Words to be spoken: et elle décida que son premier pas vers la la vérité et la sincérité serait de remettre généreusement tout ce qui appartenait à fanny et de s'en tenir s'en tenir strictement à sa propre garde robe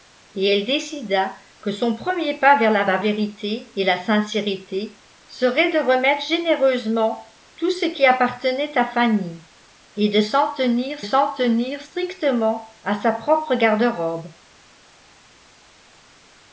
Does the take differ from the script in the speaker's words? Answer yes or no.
no